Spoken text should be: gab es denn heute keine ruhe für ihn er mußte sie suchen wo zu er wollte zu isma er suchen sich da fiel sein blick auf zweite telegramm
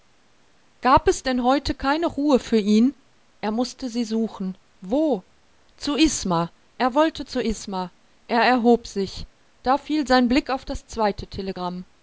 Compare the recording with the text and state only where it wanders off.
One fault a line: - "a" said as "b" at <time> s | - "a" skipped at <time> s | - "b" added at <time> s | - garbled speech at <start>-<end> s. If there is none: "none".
- "isma" added at 6.0 s
- "suchen" said as "erhob" at 8.4 s
- "das" added at 10.6 s